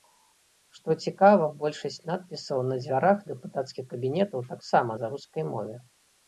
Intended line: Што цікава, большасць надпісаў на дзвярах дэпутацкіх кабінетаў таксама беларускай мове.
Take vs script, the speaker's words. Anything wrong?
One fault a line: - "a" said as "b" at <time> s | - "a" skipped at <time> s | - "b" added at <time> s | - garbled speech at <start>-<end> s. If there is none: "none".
none